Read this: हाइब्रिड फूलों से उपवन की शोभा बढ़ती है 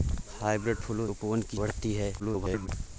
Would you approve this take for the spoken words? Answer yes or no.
no